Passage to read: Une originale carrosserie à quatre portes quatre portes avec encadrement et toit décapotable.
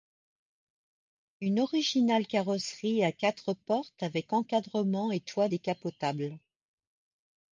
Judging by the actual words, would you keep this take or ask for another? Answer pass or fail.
fail